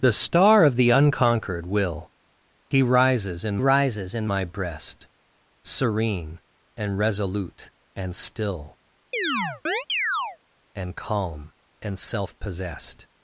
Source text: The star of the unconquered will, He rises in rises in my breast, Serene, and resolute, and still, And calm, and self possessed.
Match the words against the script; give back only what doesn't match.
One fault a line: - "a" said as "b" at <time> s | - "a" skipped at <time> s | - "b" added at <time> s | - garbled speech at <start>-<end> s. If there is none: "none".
none